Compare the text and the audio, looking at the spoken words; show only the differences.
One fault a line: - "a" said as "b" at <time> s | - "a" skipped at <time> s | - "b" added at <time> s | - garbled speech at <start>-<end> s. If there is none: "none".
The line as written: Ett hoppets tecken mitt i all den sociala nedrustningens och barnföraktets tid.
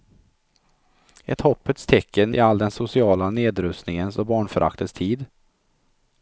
- "mitt" skipped at 2.4 s